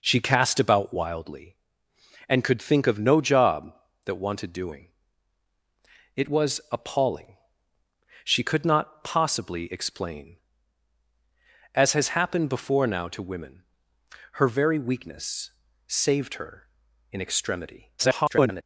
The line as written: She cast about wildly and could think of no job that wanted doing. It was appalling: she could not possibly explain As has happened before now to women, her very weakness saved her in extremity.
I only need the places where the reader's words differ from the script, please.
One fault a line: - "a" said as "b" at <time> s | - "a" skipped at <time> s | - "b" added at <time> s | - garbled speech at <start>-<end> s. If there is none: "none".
- garbled speech at 18.0-18.6 s